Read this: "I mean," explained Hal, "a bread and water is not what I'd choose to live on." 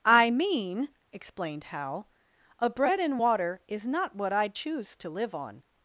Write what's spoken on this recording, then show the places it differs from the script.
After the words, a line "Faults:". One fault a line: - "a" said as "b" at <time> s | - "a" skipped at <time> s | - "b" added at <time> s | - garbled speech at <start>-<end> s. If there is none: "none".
"I mean," explained Hal, "a bread and water is not what I'd choose to live on."
Faults:
none